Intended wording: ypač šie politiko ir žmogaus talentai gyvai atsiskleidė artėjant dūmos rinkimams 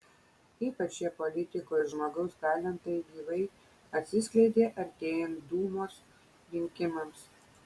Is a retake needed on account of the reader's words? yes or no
no